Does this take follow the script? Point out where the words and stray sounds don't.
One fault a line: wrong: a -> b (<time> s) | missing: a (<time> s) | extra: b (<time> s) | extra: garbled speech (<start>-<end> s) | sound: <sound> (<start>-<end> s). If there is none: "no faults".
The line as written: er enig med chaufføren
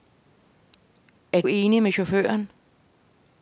no faults